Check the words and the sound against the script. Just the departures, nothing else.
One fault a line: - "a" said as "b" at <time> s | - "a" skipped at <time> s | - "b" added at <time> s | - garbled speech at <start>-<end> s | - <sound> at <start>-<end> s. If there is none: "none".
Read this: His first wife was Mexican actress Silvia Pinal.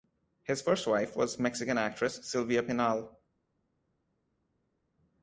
none